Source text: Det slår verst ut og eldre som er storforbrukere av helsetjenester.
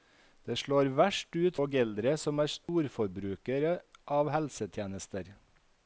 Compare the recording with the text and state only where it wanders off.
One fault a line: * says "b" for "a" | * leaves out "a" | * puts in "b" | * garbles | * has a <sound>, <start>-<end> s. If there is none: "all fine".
* has a dropout, 2.6-2.7 s